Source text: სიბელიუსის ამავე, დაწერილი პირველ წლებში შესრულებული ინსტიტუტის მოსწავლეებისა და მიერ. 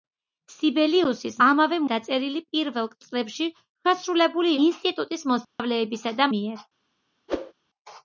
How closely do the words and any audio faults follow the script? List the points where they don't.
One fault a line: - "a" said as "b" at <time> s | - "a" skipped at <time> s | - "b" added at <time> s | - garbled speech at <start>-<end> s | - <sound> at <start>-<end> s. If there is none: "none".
- dropout at 5.4-5.6 s
- whoosh at 7.3-7.5 s